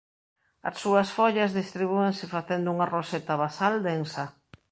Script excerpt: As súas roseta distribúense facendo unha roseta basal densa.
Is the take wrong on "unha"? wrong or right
right